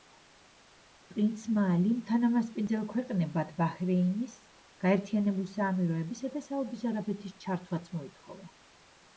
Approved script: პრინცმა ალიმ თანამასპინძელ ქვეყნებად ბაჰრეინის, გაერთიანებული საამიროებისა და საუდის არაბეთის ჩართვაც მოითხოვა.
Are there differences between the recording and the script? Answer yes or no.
no